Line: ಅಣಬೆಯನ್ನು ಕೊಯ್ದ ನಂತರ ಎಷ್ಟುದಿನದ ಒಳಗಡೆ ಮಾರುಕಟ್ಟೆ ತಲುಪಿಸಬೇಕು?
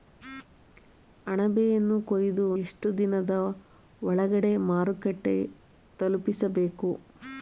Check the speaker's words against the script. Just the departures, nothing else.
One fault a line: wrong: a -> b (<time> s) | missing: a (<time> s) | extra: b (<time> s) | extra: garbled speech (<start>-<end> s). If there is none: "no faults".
missing: ನಂತರ (2.4 s)